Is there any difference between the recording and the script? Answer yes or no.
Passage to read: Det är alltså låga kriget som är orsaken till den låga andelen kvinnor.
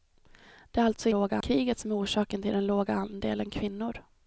no